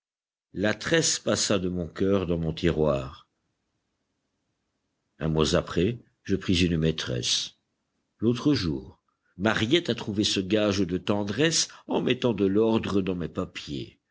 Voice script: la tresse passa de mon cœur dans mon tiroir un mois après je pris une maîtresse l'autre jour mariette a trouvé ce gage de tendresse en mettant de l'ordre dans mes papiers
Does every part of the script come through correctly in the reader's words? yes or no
yes